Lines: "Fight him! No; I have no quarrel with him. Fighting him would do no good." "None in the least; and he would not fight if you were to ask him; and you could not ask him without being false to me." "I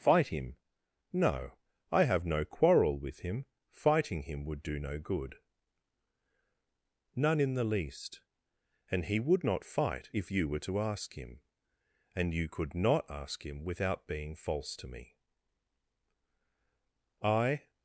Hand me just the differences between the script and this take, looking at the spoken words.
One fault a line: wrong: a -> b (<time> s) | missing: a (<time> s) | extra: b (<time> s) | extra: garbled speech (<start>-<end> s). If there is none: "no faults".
no faults